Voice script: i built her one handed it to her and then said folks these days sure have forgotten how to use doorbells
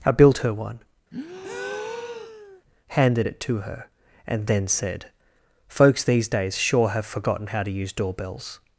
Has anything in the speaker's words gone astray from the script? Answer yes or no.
no